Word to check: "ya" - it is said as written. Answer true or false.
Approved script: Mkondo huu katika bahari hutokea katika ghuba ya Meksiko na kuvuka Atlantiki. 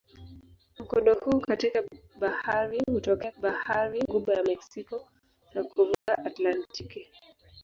true